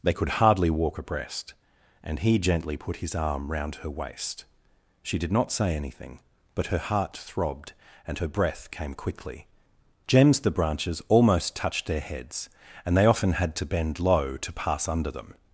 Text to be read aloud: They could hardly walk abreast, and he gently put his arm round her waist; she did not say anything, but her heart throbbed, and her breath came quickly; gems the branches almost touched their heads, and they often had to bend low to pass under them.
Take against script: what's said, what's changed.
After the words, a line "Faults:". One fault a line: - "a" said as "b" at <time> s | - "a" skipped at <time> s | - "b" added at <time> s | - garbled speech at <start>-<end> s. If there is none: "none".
They could hardly walk abreast, and he gently put his arm round her waist; she did not say anything, but her heart throbbed, and her breath came quickly; gems the branches almost touched their heads, and they often had to bend low to pass under them.
Faults:
none